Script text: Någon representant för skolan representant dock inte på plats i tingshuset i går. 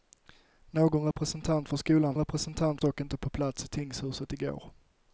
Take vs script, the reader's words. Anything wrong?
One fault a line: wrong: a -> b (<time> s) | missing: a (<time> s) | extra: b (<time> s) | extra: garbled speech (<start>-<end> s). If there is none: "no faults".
no faults